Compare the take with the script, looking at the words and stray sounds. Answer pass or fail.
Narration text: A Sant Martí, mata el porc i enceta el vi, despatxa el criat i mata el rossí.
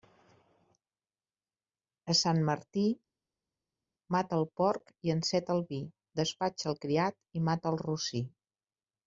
pass